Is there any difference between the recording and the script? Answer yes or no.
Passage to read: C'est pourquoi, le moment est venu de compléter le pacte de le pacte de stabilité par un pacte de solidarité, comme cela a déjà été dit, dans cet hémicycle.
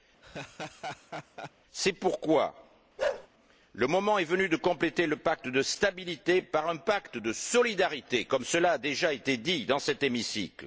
yes